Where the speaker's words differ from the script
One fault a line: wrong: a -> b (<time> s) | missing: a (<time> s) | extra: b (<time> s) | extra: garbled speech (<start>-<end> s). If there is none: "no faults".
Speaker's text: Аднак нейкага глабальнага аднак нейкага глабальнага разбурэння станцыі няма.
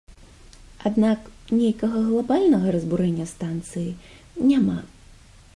missing: аднак нейкага глабальнага (2.7 s)